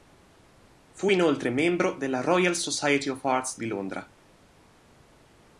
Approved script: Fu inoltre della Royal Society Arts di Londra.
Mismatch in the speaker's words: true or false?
true